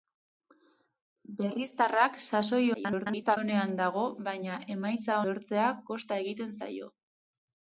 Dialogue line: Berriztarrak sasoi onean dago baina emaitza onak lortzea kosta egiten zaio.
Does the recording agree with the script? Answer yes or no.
no